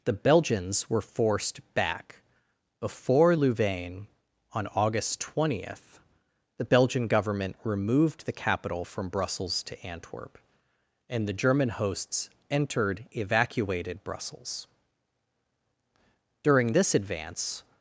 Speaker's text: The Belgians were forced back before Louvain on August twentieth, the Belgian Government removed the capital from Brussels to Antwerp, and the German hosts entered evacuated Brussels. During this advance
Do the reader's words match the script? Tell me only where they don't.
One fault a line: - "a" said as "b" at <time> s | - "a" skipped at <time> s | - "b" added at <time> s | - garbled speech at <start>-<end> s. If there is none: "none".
none